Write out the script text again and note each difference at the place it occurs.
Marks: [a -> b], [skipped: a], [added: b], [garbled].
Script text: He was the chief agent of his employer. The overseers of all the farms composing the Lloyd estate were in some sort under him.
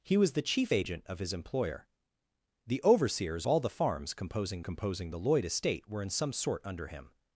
He was the chief agent of his employer. The overseers [skipped: of] all the farms composing [added: composing] the Lloyd estate were in some sort under him.